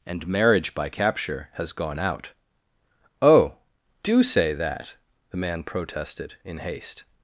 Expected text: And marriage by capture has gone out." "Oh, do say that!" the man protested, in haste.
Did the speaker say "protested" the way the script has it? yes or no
yes